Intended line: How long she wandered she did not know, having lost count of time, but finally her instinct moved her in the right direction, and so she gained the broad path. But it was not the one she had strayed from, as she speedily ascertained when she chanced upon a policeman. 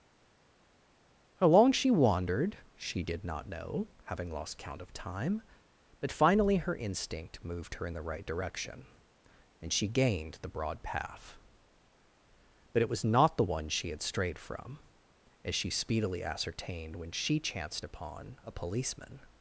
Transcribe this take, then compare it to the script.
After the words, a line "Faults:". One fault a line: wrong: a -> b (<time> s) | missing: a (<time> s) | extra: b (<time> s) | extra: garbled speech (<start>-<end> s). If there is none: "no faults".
How long she wandered she did not know, having lost count of time, but finally her instinct moved her in the right direction, and she gained the broad path. But it was not the one she had strayed from, as she speedily ascertained when she chanced upon a policeman.
Faults:
missing: so (9.7 s)